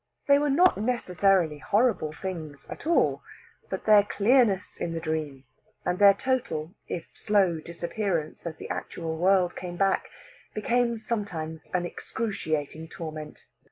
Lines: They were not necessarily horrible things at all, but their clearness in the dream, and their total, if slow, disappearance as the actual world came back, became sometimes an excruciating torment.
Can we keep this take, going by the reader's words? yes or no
yes